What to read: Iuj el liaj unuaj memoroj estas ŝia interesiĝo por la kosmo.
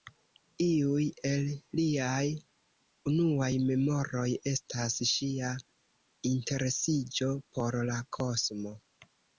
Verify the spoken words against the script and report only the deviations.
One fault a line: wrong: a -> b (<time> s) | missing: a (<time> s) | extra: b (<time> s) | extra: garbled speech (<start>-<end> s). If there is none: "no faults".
no faults